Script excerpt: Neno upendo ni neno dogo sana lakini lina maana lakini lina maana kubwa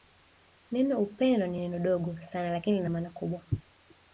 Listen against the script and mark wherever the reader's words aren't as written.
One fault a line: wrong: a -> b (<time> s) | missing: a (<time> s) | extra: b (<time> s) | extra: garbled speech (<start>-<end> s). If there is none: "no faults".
missing: lakini lina maana (3.1 s)